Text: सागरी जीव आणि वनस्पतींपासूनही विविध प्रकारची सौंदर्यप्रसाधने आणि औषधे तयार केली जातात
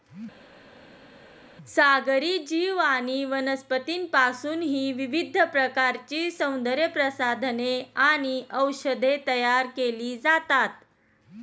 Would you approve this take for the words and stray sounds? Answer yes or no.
yes